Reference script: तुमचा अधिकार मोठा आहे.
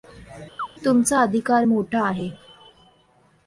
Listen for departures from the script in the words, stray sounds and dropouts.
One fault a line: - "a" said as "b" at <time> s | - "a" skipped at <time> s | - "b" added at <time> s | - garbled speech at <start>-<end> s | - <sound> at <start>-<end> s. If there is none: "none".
- chirp at 0.6-0.7 s